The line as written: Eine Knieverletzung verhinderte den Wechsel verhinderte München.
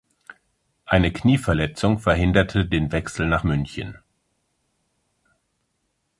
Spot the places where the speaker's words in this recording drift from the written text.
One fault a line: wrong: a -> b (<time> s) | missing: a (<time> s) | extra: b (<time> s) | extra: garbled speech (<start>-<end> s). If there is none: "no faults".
wrong: verhinderte -> nach (3.3 s)